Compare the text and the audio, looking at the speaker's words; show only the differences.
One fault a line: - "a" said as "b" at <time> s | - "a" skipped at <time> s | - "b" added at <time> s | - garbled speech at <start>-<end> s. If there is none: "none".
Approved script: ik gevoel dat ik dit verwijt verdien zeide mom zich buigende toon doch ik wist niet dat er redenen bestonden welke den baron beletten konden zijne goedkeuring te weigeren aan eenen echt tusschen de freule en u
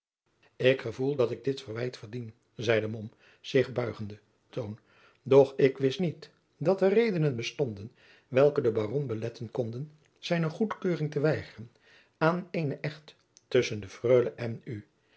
none